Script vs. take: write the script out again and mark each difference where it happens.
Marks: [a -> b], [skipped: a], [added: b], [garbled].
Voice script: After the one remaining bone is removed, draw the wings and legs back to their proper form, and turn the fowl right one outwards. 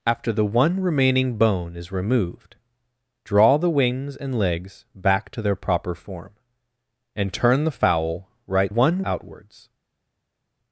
After the one remaining bone is removed, draw the wings and legs back to their proper form, and turn the fowl right one outwards.